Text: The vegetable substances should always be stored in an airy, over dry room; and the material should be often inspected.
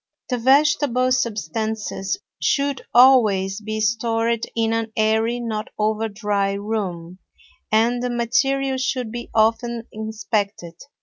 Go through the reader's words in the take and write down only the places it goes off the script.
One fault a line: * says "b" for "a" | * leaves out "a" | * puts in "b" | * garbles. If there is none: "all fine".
* puts in "not"